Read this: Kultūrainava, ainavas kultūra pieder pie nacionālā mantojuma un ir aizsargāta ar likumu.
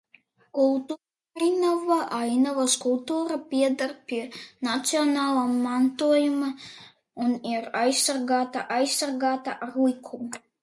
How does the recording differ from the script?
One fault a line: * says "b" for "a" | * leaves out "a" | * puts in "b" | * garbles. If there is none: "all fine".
* puts in "aizsargāta"